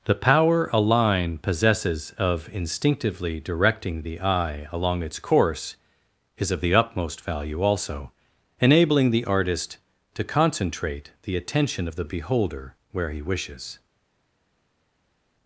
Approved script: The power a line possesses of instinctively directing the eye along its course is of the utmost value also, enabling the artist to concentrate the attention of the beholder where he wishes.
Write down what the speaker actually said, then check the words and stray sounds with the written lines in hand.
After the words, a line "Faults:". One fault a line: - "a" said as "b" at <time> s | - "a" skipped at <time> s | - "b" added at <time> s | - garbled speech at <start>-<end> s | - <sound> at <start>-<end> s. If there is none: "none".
The power a line possesses of instinctively directing the eye along its course is of the utmost value also, enabling the artist to concentrate the attention of the beholder where he wishes.
Faults:
none